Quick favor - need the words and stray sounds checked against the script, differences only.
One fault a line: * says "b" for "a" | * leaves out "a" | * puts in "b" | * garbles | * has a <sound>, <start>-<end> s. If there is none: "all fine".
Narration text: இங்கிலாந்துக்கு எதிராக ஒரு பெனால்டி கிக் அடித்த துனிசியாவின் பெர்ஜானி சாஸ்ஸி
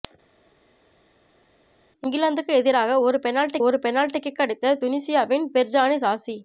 * puts in "ஒரு பெனால்டி"